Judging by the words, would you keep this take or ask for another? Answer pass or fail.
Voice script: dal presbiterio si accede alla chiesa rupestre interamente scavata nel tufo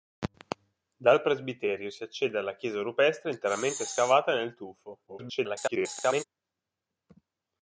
fail